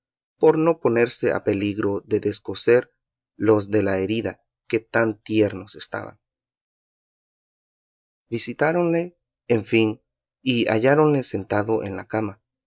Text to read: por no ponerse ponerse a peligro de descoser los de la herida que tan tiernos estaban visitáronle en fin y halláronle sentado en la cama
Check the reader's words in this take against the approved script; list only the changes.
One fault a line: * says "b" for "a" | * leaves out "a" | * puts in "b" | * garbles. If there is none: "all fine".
* leaves out "ponerse"